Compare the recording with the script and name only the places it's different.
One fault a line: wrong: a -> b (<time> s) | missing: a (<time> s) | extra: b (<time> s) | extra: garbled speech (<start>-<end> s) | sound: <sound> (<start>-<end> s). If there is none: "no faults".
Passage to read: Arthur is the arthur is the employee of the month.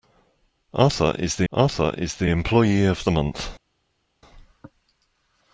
no faults